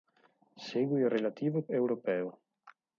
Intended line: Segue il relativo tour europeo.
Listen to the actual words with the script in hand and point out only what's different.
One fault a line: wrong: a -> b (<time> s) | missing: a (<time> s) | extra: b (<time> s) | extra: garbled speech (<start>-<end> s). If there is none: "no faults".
missing: tour (1.6 s)